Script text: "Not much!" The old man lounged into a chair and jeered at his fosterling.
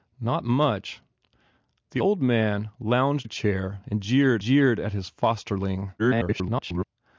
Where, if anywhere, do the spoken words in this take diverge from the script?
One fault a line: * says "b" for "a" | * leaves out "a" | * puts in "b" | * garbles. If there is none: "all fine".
* leaves out "into"
* puts in "jeered"
* garbles